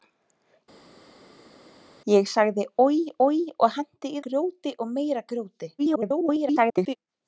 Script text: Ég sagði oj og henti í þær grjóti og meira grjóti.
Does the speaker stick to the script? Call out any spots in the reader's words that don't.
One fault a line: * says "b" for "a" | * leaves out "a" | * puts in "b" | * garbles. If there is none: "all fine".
* puts in "oj"
* leaves out "þær"
* garbles